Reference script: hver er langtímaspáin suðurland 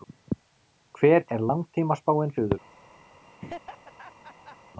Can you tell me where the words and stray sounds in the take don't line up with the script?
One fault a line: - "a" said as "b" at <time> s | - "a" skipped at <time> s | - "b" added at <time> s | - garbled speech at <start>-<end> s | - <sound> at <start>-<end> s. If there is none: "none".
- laugh at 3.3-4.6 s